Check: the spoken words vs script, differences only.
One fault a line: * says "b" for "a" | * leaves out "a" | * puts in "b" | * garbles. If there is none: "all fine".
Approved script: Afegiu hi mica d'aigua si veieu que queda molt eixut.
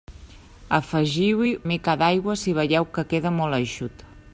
all fine